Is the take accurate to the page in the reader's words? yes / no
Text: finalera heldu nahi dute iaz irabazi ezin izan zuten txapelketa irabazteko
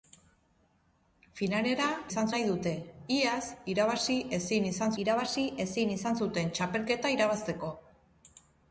no